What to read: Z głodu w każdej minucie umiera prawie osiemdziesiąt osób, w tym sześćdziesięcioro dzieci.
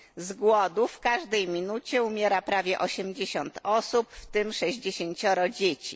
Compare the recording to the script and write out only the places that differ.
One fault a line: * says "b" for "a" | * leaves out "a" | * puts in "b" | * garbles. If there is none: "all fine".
all fine